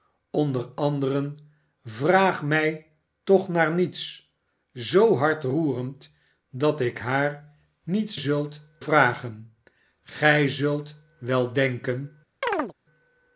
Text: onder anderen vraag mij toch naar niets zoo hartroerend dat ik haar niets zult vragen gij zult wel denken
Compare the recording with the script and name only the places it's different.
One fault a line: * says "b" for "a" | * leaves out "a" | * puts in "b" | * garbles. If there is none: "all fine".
all fine